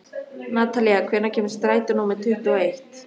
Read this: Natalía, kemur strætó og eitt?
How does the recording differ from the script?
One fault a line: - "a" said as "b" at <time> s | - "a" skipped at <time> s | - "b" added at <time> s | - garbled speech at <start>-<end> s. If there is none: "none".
- "hvenær" added at 1.1 s
- "númer tuttugu" added at 2.0 s